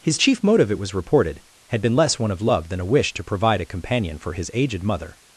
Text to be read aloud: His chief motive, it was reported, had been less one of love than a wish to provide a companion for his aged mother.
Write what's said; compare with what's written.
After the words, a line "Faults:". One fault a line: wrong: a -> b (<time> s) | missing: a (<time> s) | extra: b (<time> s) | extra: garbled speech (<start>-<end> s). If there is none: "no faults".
His chief motive, it was reported, had been less one of love than a wish to provide a companion for his aged mother.
Faults:
no faults